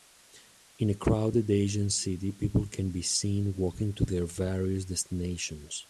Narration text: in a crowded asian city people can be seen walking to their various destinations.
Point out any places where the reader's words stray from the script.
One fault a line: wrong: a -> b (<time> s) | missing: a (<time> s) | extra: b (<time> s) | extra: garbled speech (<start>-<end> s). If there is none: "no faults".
no faults